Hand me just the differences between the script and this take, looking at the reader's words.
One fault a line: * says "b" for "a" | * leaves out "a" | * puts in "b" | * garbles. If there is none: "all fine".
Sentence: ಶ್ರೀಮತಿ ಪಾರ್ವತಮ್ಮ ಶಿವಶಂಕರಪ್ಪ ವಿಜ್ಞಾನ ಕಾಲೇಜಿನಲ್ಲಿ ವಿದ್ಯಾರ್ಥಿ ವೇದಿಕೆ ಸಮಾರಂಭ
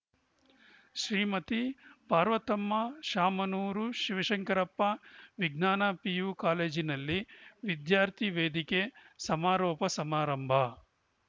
* puts in "ಶಾಮನೂರು"
* puts in "ಪಿಯು"
* puts in "ಸಮಾರೋಪ"